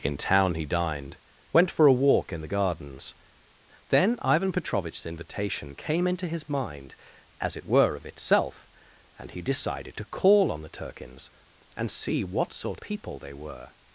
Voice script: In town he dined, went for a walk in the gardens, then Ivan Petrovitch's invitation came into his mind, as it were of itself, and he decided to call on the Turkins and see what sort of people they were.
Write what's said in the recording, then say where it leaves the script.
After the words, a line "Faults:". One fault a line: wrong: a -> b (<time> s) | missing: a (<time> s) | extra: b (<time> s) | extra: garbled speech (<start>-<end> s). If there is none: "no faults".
In town he dined, went for a walk in the gardens, then Ivan Petrovitch's invitation came into his mind, as it were of itself, and he decided to call on the Turkins and see what sort people they were.
Faults:
missing: of (12.8 s)